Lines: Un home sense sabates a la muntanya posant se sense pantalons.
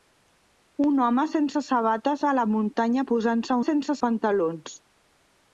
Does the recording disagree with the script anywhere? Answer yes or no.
no